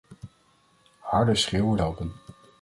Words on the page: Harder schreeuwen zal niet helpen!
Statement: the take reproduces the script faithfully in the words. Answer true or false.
false